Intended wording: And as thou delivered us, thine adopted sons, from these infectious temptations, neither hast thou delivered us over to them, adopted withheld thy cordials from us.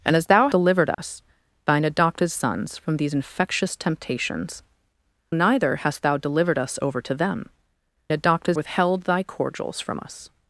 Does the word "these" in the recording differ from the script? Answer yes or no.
no